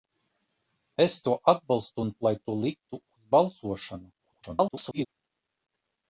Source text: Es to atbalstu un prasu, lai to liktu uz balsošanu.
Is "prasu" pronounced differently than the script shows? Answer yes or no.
yes